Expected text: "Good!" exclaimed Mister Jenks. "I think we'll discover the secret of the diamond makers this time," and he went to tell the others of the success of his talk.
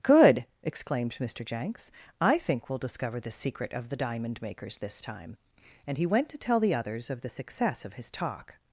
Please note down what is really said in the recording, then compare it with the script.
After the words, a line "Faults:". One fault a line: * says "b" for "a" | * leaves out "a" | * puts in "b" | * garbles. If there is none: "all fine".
"Good!" exclaimed Mister Jenks. "I think we'll discover the secret of the diamond makers this time," and he went to tell the others of the success of his talk.
Faults:
all fine